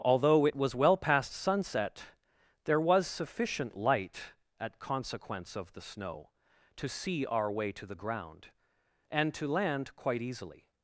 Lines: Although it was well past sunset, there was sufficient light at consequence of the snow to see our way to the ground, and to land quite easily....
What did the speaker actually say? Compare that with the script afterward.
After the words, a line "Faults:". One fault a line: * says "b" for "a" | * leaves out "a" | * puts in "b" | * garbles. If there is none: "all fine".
Although it was well past sunset, there was sufficient light at consequence of the snow to see our way to the ground, and to land quite easily....
Faults:
all fine